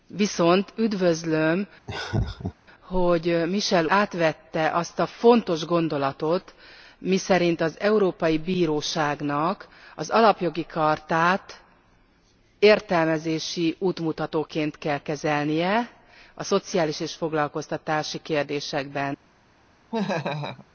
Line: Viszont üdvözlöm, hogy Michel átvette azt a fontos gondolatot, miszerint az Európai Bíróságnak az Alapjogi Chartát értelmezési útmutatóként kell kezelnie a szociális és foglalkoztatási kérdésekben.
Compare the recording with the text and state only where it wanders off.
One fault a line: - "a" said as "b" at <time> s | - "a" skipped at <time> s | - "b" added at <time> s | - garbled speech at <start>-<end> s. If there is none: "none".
none